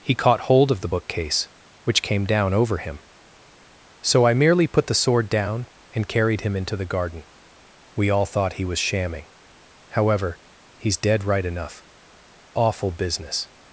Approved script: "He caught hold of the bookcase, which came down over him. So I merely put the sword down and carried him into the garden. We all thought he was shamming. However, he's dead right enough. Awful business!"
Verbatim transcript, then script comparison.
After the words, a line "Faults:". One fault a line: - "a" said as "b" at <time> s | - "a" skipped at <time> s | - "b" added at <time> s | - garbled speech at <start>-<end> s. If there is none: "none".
"He caught hold of the bookcase, which came down over him. So I merely put the sword down and carried him into the garden. We all thought he was shamming. However, he's dead right enough. Awful business!"
Faults:
none